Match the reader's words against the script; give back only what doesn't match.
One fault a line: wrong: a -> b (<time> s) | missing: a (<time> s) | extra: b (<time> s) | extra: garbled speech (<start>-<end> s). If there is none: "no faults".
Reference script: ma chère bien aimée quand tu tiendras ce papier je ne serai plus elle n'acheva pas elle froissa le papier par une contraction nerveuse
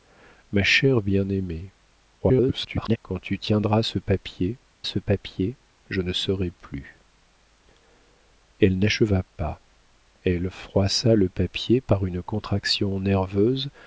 extra: garbled speech (2.2-3.0 s)
extra: ce papier (4.8 s)